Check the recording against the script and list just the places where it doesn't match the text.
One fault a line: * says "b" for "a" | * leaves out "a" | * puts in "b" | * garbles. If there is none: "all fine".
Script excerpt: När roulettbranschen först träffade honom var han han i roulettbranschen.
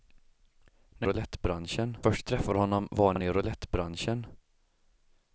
all fine